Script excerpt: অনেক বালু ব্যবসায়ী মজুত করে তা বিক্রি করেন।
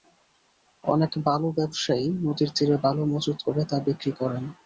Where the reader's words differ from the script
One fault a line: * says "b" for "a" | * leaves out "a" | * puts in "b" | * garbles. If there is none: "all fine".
* puts in "নদীর তীরে বালু"